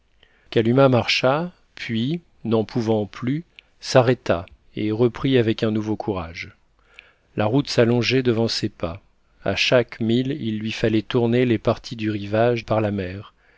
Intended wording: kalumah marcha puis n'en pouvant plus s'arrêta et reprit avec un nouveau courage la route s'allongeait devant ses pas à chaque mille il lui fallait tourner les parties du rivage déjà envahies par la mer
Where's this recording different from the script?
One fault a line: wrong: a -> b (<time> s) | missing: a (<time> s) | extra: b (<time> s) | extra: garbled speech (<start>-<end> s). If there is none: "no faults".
missing: déjà envahies (12.7 s)